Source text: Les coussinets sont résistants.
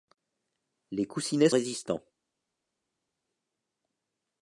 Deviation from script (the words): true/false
true